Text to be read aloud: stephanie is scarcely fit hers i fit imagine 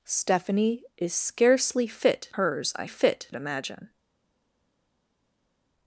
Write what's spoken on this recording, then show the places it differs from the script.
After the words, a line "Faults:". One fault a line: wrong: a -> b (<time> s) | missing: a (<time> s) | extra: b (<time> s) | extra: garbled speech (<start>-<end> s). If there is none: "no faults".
stephanie is scarcely fit hers i fit imagine
Faults:
no faults